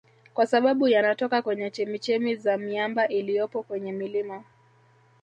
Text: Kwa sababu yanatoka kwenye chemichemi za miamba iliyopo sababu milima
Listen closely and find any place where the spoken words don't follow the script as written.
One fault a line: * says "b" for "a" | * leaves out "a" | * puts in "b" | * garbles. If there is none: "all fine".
* says "kwenye" for "sababu"